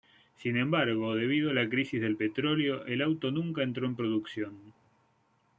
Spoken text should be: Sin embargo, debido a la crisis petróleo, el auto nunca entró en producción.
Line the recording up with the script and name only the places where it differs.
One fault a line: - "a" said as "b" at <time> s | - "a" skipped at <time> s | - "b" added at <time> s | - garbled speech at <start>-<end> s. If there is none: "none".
- "del" added at 2.0 s